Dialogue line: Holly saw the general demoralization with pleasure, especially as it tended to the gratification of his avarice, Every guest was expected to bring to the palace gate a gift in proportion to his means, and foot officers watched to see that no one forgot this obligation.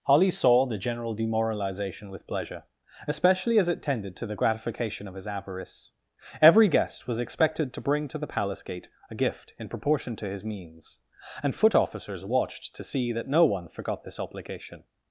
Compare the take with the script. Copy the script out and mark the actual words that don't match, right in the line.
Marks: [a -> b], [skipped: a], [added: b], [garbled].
Holly saw the general demoralization with pleasure, especially as it tended to the gratification of his avarice, Every guest was expected to bring to the palace gate a gift in proportion to his means, and foot officers watched to see that no one forgot this obligation.